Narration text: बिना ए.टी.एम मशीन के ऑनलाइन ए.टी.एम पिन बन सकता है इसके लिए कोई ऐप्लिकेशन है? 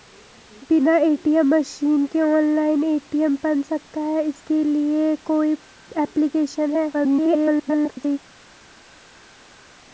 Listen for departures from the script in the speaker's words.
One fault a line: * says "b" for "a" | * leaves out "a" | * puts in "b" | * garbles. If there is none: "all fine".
* leaves out "पिन"
* garbles